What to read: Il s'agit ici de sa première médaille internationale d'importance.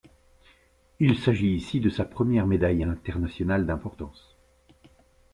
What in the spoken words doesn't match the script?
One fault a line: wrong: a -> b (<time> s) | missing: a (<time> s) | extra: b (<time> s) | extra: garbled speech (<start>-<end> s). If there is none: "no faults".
no faults